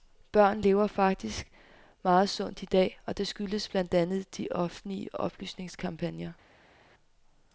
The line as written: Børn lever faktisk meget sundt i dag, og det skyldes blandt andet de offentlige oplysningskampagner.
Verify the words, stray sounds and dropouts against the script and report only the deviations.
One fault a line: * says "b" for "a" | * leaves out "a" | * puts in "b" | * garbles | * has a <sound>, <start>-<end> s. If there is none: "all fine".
all fine